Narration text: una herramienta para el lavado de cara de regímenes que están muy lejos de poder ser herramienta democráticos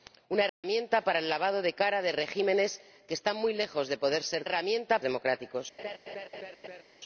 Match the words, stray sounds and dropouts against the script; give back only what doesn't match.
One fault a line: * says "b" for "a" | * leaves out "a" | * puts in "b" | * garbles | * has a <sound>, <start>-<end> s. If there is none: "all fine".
* has a dropout, 0.5-0.6 s
* has a laugh, 5.8-6.8 s